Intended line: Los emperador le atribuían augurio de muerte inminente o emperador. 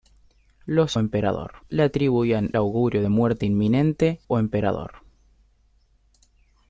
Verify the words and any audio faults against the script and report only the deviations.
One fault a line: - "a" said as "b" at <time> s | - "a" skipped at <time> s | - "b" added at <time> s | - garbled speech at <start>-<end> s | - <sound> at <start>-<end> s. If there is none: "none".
none